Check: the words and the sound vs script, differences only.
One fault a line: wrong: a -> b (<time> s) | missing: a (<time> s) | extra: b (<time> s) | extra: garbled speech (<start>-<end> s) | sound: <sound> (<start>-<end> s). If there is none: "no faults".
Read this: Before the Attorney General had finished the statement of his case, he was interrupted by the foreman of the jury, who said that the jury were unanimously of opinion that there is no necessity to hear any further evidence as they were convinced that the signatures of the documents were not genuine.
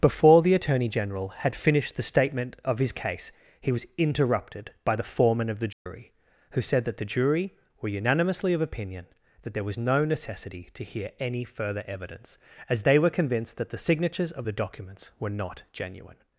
sound: dropout (5.7-5.9 s)
wrong: is -> was (9.6 s)